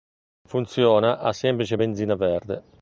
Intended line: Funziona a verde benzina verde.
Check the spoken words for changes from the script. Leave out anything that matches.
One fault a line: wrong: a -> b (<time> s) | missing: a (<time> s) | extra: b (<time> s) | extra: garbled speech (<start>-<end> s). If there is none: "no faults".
wrong: verde -> semplice (1.3 s)